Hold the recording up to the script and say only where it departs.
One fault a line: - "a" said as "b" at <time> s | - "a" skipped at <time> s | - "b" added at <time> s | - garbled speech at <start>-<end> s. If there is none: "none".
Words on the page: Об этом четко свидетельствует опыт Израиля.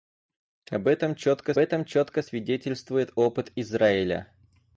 - "этом четко" added at 1.6 s